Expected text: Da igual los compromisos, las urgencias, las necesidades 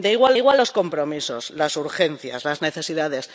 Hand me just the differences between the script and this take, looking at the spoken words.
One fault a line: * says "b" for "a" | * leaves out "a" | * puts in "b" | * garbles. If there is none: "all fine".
* puts in "igual"